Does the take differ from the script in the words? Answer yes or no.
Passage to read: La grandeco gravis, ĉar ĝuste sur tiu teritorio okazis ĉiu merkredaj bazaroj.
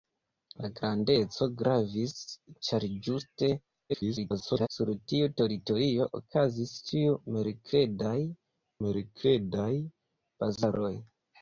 yes